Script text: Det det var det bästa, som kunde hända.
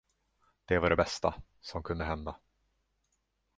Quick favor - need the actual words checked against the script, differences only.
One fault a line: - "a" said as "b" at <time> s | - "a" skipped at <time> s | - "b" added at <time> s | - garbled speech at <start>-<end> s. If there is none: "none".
- "det" skipped at 0.8 s